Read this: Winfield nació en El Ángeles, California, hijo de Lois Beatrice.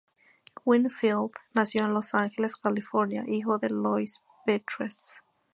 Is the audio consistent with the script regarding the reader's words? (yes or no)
no